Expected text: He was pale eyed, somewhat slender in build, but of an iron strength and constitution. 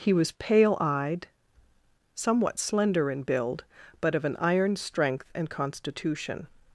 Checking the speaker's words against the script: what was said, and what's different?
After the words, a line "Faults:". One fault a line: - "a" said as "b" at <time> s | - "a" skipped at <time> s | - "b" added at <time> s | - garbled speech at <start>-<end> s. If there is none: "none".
He was pale eyed, somewhat slender in build, but of an iron strength and constitution.
Faults:
none